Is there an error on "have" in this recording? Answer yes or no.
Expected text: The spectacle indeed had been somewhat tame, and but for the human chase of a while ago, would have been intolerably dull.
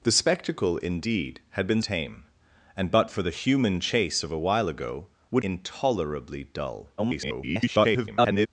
yes